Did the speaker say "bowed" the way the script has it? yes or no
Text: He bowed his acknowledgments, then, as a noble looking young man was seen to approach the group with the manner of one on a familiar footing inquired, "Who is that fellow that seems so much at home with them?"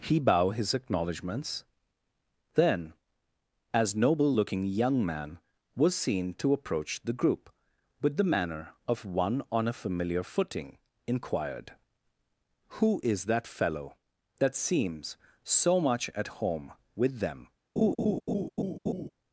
no